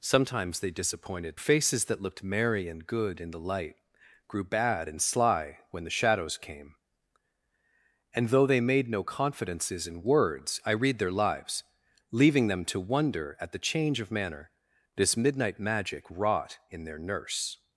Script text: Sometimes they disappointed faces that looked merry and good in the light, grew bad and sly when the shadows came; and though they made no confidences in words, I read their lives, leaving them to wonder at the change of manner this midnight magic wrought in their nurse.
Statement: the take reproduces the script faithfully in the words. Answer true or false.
true